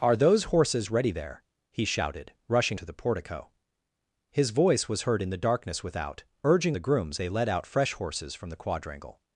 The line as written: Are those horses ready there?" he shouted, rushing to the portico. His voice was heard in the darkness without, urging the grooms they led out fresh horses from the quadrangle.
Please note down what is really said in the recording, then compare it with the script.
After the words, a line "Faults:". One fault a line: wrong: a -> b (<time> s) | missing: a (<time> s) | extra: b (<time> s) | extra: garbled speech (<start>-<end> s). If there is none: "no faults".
Are those horses ready there?" he shouted, rushing to the portico. His voice was heard in the darkness without, urging the grooms they led out fresh horses from the quadrangle.
Faults:
no faults